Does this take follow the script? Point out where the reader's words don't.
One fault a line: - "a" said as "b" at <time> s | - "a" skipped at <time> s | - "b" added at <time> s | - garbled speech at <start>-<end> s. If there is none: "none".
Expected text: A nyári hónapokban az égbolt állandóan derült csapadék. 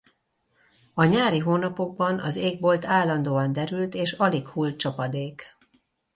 - "és alig hull" added at 3.9 s